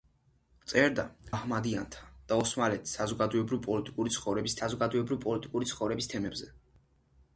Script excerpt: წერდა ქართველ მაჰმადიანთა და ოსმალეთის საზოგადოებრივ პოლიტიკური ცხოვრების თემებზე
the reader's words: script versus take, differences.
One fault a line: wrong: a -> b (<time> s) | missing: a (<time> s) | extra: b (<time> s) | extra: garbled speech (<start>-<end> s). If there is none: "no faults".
missing: ქართველ (1.0 s)
extra: საზოგადოებრივ პოლიტიკური ცხოვრების (4.6 s)